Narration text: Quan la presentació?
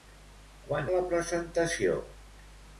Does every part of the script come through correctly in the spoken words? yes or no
yes